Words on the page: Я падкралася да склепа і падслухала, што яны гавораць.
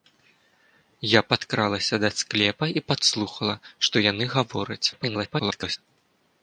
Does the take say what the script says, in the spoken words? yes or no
no